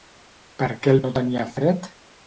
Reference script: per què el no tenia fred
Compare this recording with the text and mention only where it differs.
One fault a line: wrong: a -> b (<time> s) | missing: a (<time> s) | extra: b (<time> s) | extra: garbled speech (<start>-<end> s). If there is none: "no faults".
no faults